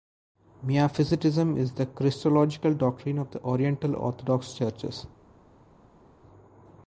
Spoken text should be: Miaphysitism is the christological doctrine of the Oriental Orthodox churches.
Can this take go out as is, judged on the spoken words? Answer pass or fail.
pass